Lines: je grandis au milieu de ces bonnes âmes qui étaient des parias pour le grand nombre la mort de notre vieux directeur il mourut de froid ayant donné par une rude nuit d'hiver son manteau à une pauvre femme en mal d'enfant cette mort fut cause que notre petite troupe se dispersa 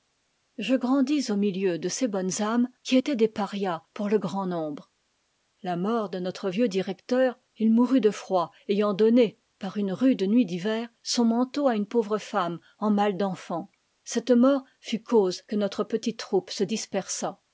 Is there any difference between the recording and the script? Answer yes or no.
no